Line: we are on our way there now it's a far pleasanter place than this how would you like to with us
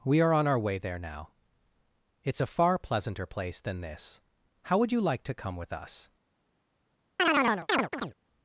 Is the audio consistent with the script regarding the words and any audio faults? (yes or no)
no